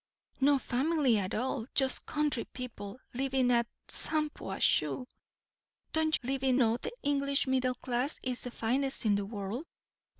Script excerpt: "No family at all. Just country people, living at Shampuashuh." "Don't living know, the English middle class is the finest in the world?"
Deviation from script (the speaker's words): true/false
false